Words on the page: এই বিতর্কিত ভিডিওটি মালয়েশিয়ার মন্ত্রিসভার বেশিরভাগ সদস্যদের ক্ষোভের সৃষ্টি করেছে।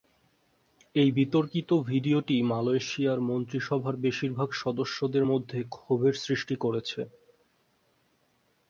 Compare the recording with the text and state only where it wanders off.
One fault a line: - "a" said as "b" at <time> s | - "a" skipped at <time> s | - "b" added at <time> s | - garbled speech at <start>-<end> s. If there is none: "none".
- "মধ্যে" added at 5.2 s